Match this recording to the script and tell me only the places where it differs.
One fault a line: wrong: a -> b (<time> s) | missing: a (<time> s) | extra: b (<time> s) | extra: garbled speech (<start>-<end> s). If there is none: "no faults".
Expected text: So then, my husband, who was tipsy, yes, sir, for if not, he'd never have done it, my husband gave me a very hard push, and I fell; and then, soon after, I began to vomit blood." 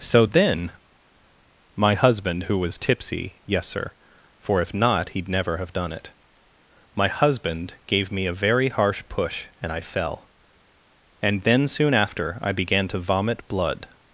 wrong: hard -> harsh (8.7 s)